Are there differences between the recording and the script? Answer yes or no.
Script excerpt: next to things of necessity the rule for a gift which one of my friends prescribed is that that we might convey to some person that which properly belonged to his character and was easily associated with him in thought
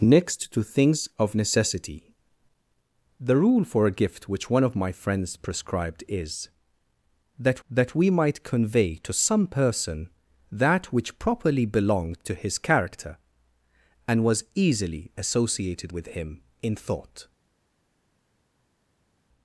no